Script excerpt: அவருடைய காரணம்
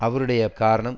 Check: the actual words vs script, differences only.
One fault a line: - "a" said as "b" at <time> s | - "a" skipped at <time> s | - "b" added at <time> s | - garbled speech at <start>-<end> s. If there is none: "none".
none